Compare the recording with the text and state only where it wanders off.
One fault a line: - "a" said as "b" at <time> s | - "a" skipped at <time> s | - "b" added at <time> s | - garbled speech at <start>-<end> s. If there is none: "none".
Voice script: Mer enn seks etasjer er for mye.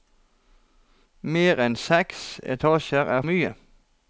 - "for" skipped at 3.2 s